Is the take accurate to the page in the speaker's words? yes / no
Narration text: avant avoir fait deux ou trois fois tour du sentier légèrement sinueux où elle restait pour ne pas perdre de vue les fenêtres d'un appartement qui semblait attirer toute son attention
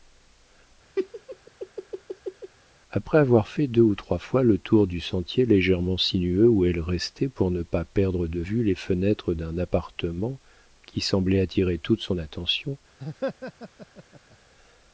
no